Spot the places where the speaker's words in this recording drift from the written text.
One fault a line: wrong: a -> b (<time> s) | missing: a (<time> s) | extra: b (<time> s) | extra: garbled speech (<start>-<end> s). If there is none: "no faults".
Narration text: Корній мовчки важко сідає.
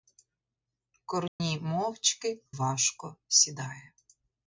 no faults